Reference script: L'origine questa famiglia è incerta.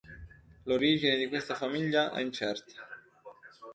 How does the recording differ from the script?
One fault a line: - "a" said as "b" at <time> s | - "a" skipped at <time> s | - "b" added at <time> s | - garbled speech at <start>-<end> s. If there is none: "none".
- "di" added at 1.1 s